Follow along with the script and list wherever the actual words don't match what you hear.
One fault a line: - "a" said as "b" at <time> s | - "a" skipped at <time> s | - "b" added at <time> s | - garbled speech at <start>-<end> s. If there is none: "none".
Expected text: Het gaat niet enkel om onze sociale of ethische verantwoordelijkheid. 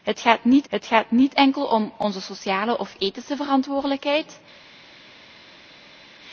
- "het gaat niet" added at 0.7 s